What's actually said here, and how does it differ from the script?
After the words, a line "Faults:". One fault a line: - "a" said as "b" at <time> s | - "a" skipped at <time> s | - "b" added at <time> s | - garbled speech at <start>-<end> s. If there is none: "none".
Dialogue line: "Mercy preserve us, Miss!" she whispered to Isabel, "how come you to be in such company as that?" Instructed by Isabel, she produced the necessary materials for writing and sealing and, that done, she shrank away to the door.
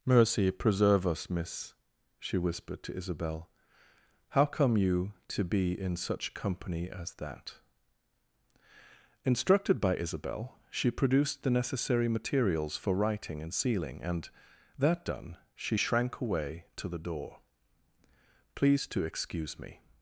"Mercy preserve us, Miss!" she whispered to Isabel, "how come you to be in such company as that?" Instructed by Isabel, she produced the necessary materials for writing and sealing and, that done, she shrank away to the door. "Please to excuse me
Faults:
- "Please to excuse me" added at 18.5 s